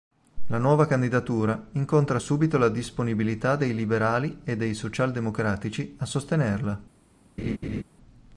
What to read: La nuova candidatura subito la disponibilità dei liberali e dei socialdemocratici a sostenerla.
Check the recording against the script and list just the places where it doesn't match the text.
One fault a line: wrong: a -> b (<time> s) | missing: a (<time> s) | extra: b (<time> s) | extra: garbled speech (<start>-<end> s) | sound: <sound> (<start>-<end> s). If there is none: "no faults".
extra: incontra (1.7 s)
sound: laugh (7.4-7.8 s)